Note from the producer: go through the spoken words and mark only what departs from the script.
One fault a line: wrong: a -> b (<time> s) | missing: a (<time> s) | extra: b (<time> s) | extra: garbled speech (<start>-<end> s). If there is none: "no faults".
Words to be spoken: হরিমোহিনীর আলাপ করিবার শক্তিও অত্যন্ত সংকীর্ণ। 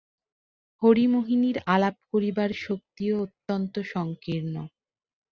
no faults